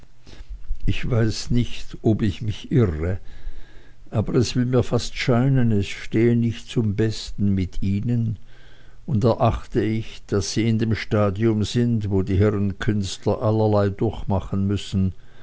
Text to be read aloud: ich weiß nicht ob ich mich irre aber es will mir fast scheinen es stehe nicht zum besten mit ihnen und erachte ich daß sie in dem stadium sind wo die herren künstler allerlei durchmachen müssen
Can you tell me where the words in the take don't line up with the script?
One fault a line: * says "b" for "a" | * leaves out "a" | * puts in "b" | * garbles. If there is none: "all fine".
all fine